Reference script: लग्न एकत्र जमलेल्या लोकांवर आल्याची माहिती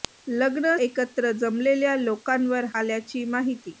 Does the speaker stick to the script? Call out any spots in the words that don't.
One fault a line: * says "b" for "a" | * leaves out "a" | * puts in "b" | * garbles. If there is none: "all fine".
all fine